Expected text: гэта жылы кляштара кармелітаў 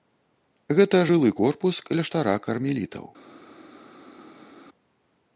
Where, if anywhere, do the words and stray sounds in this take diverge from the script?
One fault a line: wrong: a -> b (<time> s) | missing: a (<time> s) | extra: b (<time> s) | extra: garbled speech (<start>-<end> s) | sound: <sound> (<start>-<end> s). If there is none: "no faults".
extra: корпус (1.4 s)